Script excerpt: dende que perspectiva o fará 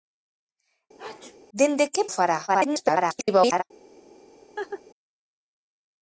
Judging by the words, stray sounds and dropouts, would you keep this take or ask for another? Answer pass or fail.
fail